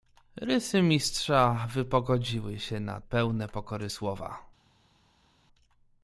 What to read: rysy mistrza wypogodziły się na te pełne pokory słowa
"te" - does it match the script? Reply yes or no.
no